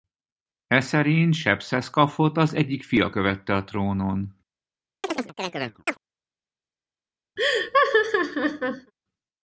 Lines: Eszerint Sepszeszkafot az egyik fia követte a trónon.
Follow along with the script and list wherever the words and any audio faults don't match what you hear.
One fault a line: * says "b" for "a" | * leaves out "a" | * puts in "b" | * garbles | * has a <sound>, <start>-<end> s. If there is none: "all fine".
* has a chirp, 5.0-6.0 s
* has a laugh, 7.4-8.9 s